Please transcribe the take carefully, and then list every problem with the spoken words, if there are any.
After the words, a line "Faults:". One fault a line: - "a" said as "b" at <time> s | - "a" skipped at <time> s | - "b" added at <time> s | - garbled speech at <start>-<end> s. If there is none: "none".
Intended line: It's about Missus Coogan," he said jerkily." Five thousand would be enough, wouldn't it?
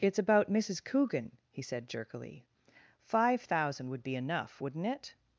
It's about Missus Coogan," he said jerkily." Five thousand would be enough, wouldn't it?
Faults:
none